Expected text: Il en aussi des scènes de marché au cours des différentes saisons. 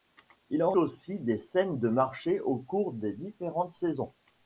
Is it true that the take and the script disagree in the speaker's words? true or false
false